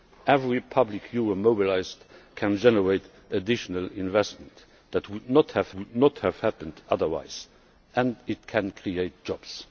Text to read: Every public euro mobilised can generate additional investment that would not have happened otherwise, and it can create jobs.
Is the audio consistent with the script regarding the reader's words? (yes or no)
no